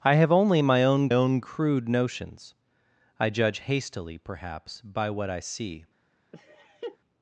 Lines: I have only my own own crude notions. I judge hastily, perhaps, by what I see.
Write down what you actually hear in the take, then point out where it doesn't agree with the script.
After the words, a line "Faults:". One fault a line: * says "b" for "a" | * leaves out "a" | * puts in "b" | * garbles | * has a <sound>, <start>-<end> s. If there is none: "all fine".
I have only my own own crude notions. I judge hastily, perhaps, by what I see.
Faults:
* has a laugh, 6.3-7.0 s